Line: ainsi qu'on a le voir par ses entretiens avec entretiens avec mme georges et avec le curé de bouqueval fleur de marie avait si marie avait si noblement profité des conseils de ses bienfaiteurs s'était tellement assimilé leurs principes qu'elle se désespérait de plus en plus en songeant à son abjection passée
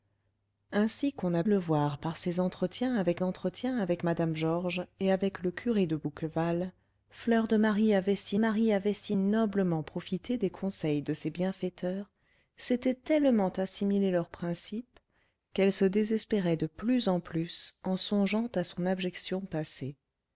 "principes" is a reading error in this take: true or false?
false